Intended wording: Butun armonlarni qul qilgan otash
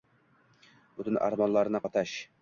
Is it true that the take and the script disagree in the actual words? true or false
true